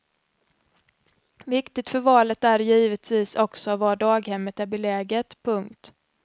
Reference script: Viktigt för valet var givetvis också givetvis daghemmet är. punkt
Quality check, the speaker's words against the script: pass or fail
fail